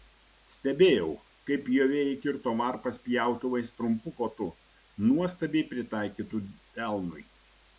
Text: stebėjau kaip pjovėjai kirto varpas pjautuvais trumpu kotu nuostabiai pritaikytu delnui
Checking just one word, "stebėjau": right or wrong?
right